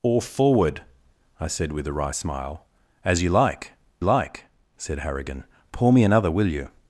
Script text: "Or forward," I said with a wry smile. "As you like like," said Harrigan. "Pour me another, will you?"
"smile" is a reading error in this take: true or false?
false